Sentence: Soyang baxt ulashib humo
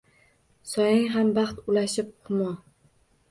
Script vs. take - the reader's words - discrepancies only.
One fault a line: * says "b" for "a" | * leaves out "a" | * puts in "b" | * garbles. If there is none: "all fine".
* puts in "ham"